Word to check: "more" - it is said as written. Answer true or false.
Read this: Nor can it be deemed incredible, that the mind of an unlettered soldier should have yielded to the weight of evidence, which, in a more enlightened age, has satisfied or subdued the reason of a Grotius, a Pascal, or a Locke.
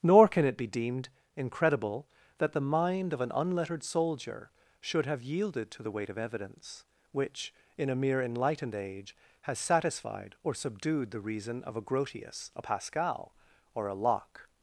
false